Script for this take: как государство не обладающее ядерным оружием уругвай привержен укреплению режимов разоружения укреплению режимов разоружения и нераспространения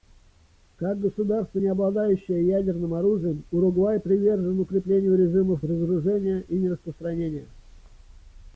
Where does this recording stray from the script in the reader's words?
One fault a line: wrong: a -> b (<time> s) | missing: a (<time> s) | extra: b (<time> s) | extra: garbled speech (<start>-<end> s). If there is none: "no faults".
missing: укреплению режимов разоружения (6.4 s)